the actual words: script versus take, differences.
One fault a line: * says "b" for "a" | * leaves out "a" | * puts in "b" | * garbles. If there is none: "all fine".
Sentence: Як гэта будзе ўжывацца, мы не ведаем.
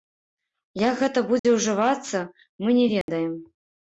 all fine